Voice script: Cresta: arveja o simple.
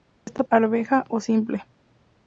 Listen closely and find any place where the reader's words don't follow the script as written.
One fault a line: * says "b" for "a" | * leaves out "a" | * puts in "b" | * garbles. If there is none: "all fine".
all fine